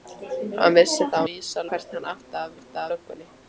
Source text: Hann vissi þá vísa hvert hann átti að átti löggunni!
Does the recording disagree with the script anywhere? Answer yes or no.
no